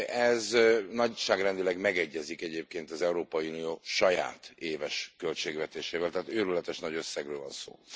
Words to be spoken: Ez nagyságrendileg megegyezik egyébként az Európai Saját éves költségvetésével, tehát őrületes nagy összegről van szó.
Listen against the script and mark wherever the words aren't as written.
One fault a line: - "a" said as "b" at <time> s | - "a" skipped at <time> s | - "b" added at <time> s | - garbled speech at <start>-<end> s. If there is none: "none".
- "Unió" added at 3.5 s